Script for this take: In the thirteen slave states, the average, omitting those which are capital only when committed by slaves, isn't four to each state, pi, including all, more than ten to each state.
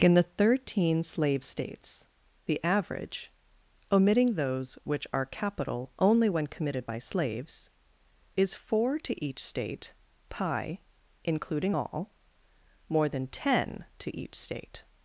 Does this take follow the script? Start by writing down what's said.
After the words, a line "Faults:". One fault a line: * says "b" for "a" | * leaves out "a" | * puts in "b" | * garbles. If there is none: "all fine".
In the thirteen slave states, the average, omitting those which are capital only when committed by slaves, is four to each state, pi, including all, more than ten to each state.
Faults:
* says "is" for "isn't"